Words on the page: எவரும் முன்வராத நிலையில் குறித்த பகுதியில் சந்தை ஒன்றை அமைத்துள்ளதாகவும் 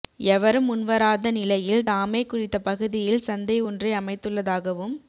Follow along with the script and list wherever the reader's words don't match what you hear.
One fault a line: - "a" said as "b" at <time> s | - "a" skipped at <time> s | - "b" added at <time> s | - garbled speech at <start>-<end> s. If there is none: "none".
- "தாமே" added at 1.8 s